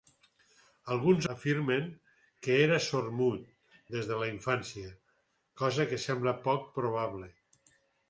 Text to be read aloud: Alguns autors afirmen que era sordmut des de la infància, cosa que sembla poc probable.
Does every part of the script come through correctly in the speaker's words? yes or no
no